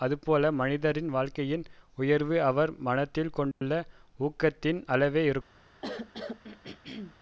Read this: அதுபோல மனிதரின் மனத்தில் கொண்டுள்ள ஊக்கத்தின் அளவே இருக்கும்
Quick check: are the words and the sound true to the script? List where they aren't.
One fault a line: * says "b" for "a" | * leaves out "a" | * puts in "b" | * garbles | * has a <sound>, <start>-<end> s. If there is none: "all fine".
* puts in "வாழ்க்கையின் உயர்வு அவர்"
* has a dropout, 3.5-3.6 s
* has a throat clearing, 5.8-7.2 s